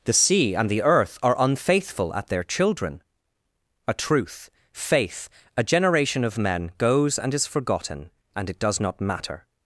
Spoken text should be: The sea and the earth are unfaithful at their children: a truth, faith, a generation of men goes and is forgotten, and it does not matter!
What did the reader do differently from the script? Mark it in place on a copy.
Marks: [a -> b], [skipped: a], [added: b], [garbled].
The sea and the earth are unfaithful at their children: a truth, faith, a generation of men goes and is forgotten, and it does not matter!